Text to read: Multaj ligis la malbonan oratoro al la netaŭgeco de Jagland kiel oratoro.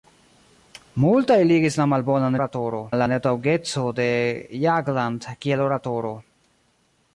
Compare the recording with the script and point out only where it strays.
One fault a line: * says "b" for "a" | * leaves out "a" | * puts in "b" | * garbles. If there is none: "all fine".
all fine